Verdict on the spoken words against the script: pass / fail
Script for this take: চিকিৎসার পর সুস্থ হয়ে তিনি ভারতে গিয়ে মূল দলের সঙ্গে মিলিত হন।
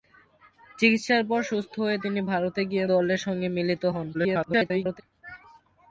fail